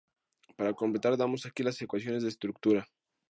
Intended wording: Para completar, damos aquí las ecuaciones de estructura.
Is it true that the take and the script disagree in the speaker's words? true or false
false